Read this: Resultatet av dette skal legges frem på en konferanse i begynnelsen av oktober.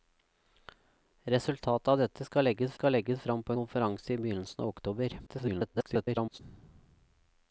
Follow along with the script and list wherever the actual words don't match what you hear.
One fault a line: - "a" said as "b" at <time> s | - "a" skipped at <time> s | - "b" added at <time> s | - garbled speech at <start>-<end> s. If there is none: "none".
- "skal legges" added at 2.7 s
- "en" skipped at 3.5 s
- garbled speech at 5.3-6.4 s